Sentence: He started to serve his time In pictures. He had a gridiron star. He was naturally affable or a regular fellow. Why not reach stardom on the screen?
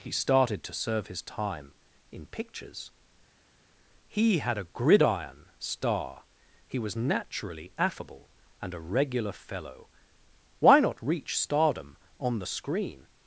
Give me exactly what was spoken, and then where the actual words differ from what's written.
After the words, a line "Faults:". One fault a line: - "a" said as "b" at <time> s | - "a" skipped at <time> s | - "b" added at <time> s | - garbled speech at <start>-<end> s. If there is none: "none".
He started to serve his time In pictures. He had a gridiron star. He was naturally affable and a regular fellow. Why not reach stardom on the screen?
Faults:
- "or" said as "and" at 8.6 s